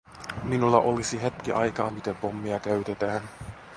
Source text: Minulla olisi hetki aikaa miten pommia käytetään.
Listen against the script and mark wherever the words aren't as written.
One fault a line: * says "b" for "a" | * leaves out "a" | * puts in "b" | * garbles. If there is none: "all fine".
all fine